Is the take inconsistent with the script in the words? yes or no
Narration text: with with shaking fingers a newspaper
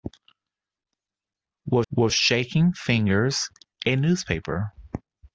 no